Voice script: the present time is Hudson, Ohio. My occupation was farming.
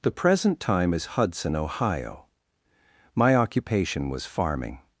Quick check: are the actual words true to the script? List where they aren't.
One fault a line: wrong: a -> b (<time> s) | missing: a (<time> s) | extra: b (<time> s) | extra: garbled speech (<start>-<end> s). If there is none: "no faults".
no faults